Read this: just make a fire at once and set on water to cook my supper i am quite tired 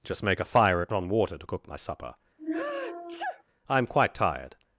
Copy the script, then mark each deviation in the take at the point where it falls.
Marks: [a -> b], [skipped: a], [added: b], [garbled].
just make a fire at [skipped: once and set] on water to cook my supper i am quite tired